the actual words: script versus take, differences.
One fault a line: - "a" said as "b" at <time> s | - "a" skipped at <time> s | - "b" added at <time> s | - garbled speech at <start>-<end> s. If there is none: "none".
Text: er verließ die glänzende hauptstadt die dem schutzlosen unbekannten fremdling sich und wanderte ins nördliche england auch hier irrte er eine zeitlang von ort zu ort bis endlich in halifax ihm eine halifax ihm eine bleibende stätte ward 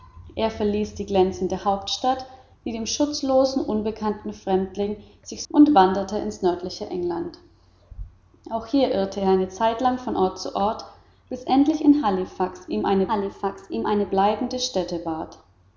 none